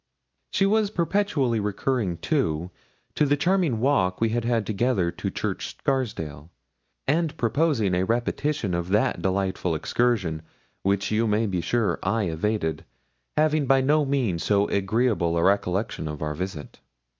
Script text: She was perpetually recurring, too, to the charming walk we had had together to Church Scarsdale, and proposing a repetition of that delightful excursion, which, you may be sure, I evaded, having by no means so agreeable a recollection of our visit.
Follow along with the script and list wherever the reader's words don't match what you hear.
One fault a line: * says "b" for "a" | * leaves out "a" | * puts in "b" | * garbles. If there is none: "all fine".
all fine